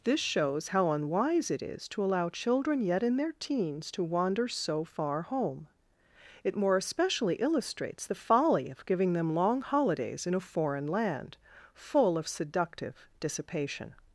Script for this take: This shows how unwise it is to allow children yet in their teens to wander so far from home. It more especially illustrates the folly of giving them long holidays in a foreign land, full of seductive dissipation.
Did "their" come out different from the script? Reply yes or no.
no